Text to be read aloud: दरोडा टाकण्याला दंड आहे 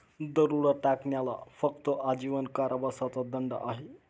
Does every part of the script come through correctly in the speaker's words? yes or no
no